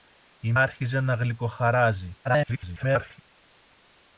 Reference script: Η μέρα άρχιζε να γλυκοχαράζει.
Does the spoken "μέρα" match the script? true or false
false